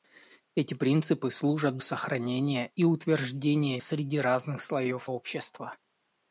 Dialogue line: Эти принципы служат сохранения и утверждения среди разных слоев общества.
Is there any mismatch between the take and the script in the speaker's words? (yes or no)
no